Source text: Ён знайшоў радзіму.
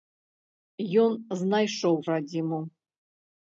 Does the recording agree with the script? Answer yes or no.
yes